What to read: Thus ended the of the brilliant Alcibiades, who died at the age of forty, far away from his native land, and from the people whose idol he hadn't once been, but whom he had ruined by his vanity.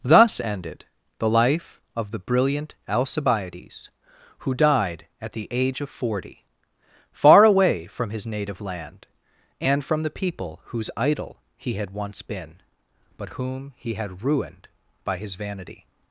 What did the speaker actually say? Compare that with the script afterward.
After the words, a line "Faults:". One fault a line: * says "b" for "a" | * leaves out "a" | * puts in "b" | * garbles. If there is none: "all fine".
Thus ended the life of the brilliant Alcibiades, who died at the age of forty, far away from his native land, and from the people whose idol he had once been, but whom he had ruined by his vanity.
Faults:
* puts in "life"
* says "had" for "hadn't"